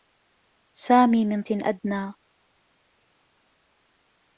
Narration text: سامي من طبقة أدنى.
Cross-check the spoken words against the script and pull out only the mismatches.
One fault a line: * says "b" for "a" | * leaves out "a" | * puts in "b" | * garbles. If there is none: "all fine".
* leaves out "طبقة"